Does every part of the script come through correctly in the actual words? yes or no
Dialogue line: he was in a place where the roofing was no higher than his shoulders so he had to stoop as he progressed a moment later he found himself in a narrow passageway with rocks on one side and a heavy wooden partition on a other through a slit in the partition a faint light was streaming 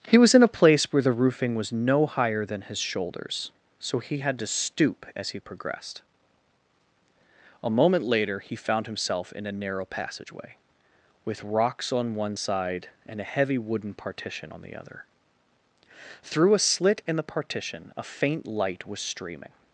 no